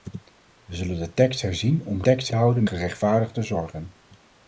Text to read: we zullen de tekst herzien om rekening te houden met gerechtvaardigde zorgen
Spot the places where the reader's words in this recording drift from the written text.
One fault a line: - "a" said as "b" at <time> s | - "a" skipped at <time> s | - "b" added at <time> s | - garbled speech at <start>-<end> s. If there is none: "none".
- "rekening" said as "tekst" at 2.0 s
- "met" skipped at 2.6 s